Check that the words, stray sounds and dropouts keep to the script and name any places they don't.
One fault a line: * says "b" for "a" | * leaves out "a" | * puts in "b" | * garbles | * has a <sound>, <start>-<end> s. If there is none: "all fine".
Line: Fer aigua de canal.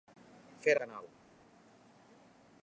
* leaves out "aigua"